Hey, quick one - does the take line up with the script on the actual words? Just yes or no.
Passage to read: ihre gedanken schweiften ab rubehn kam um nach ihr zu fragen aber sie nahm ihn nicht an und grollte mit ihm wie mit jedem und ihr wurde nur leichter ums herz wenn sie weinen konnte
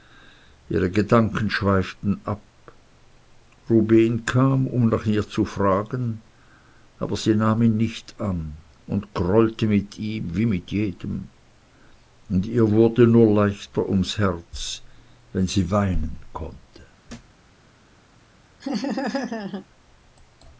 yes